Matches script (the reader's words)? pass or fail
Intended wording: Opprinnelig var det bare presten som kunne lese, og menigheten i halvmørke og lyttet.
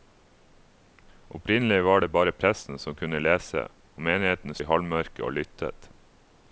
pass